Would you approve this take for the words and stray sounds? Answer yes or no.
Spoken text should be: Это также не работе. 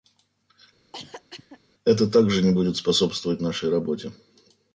no